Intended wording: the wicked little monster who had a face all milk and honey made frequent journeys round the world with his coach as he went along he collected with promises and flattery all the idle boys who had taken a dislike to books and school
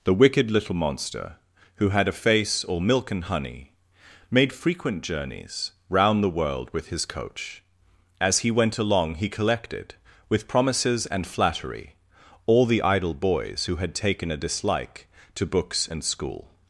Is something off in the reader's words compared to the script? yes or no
no